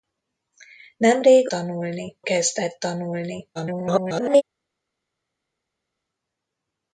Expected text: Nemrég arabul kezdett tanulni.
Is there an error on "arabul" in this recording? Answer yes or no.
yes